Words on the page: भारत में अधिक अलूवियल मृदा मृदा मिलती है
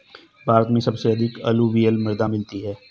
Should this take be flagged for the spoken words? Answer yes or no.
yes